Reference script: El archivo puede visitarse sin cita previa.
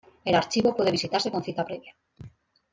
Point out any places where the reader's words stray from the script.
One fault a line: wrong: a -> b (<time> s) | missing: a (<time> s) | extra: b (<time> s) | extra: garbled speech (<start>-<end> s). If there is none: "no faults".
wrong: sin -> con (1.3 s)